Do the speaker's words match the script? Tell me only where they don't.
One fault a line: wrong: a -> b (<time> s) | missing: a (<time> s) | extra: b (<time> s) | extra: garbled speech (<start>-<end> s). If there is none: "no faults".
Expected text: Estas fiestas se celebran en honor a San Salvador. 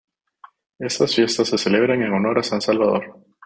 no faults